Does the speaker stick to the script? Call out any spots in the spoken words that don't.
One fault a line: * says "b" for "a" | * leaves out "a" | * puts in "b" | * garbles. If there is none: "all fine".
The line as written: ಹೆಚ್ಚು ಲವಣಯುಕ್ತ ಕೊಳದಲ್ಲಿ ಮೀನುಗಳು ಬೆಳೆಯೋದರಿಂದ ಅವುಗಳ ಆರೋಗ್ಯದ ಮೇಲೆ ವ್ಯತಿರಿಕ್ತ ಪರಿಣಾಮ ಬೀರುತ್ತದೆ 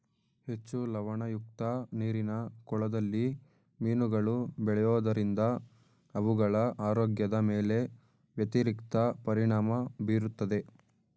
* puts in "ನೀರಿನ"